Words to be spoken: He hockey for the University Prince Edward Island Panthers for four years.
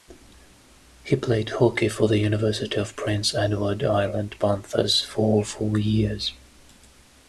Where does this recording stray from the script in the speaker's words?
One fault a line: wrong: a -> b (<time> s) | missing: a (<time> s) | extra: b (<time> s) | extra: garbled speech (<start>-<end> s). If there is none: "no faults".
extra: played (1.1 s)
extra: of (2.8 s)